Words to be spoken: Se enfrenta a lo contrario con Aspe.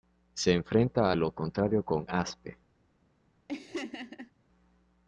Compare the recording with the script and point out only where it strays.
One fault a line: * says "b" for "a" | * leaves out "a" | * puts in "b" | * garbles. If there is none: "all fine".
all fine